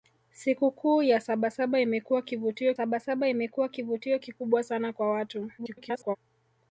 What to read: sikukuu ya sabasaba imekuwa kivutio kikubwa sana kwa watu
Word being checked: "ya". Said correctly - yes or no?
yes